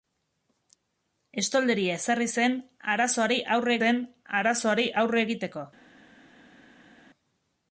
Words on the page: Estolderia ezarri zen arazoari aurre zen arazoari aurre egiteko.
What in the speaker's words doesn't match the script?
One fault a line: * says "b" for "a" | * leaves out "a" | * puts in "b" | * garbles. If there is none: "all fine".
all fine